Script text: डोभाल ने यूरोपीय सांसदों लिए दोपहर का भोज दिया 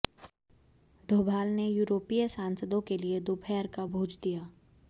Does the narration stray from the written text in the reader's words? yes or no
yes